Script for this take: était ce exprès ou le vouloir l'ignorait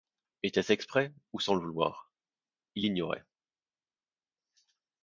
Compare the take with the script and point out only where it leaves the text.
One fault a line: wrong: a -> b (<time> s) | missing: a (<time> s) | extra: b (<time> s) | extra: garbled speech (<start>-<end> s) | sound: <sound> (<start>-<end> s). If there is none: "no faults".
extra: sans (1.4 s)
extra: il (2.7 s)